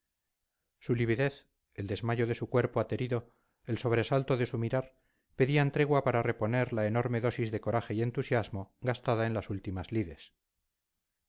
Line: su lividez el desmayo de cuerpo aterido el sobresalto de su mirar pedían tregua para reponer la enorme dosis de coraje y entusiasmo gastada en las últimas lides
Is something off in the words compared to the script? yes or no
yes